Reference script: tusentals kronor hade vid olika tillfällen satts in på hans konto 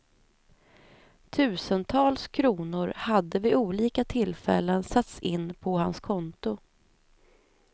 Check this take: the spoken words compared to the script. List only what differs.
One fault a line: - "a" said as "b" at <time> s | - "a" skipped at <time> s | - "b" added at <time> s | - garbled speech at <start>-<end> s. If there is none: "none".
none